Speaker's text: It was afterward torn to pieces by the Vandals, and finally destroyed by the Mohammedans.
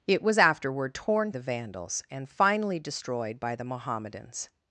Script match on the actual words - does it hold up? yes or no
no